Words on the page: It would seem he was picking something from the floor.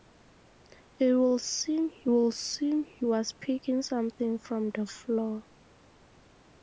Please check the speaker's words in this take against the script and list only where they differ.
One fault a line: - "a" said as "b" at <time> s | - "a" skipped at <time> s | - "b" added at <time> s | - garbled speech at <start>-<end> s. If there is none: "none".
- "would seem he" added at 2.0 s